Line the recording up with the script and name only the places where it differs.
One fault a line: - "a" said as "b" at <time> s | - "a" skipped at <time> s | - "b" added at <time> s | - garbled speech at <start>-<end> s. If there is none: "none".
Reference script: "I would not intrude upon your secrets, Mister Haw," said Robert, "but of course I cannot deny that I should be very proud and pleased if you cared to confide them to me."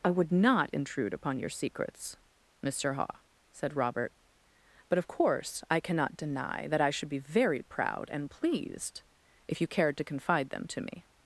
none